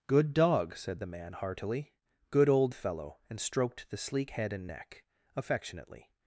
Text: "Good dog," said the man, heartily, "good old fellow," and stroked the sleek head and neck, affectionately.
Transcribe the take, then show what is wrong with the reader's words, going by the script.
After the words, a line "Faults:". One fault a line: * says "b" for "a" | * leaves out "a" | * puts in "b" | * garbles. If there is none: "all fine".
"Good dog," said the man, heartily, "good old fellow," and stroked the sleek head and neck, affectionately.
Faults:
all fine